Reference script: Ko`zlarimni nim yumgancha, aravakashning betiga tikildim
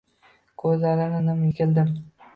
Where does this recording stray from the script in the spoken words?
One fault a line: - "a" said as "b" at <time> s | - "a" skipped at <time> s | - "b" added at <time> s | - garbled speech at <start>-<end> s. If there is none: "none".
- "yumgancha aravakashning betiga" skipped at 1.4 s